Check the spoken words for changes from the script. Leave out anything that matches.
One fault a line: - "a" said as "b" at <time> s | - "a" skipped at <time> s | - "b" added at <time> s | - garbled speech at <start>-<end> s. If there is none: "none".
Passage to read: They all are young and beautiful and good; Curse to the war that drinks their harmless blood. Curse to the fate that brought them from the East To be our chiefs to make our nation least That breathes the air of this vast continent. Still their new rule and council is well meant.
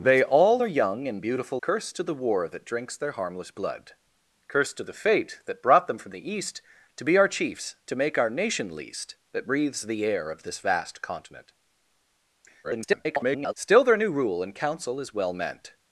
- "and good" skipped at 1.6 s
- garbled speech at 12.6-13.5 s